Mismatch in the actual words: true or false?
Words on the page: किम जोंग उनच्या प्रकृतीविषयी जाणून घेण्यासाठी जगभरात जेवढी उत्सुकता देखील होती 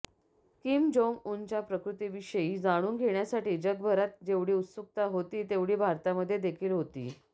true